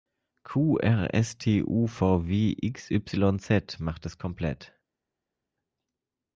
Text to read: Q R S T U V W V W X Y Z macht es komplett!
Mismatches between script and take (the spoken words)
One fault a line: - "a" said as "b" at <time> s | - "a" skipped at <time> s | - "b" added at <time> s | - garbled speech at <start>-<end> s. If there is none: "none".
- "V W" skipped at 2.5 s